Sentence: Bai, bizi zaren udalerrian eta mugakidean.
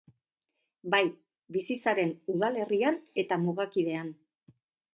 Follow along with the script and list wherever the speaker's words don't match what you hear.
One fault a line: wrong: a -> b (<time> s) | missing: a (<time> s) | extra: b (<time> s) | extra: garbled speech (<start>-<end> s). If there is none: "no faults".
no faults